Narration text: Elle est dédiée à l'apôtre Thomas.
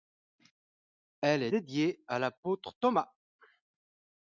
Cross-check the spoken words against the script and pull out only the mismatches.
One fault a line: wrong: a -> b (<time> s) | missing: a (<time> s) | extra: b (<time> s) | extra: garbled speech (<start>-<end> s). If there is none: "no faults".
no faults